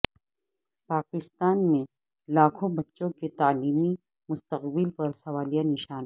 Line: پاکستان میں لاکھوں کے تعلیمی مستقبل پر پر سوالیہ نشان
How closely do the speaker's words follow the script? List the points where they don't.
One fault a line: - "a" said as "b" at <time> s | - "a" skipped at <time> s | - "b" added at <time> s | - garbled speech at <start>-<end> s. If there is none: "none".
- "بچوں" added at 2.7 s
- "پر" skipped at 5.1 s